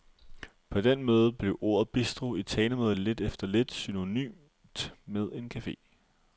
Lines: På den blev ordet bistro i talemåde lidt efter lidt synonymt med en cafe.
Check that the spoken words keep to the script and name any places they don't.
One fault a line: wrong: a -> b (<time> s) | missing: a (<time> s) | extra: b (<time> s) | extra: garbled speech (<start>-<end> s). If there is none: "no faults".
extra: måde (1.0 s)